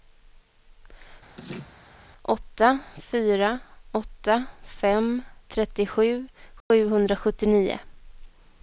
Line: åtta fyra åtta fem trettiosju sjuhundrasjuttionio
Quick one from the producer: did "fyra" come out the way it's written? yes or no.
yes